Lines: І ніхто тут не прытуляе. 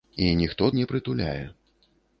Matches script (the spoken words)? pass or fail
fail